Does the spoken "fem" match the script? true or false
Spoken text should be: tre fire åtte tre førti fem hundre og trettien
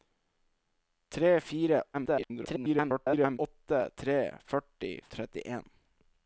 false